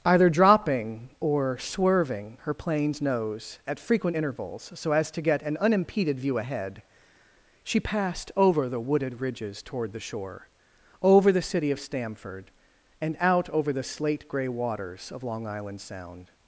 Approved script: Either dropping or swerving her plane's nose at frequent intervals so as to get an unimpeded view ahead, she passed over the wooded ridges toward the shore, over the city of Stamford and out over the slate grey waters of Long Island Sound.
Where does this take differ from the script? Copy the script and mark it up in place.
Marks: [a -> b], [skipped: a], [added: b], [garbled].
Either dropping or swerving her plane's nose at frequent intervals so as to get an unimpeded view ahead, she passed over the wooded ridges toward the shore, over the city of Stamford and out over the slate grey waters of Long Island Sound.